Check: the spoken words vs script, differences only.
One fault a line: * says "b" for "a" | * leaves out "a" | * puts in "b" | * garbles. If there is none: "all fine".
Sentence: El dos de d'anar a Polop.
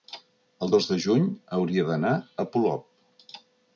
* puts in "juny hauria"